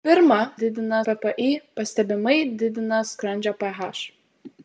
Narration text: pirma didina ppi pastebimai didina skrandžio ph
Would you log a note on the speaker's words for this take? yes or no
no